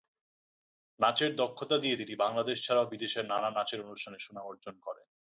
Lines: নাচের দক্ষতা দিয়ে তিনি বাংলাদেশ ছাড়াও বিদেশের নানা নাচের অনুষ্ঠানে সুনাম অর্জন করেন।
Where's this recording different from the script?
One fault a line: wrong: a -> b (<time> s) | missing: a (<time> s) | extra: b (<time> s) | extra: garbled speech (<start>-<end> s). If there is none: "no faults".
no faults